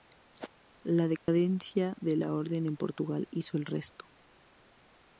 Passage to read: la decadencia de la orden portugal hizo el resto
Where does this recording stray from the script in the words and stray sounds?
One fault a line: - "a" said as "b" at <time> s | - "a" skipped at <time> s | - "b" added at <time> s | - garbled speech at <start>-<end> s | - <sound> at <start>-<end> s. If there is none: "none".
- dropout at 1.2-1.3 s
- "en" added at 2.7 s